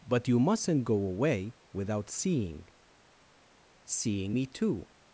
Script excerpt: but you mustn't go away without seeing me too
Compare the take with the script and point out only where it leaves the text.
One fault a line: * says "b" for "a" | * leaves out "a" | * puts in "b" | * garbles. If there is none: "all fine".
* puts in "seeing"